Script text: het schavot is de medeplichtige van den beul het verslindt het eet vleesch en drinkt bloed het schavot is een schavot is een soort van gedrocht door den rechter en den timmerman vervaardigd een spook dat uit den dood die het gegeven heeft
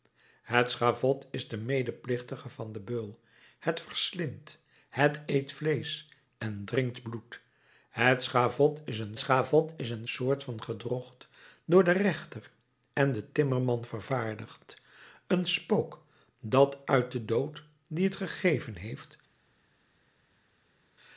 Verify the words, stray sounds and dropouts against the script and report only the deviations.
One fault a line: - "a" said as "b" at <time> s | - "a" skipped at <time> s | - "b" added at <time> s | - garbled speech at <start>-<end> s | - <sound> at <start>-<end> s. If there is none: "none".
none